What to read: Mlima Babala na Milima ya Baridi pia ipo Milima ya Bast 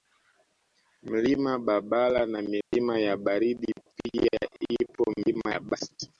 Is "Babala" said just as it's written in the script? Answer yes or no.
yes